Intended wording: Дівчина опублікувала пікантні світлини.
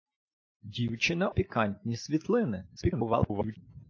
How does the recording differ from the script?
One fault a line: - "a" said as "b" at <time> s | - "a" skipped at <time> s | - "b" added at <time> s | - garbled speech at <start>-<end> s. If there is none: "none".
- "опублікувала" skipped at 1.3 s
- garbled speech at 2.8-3.6 s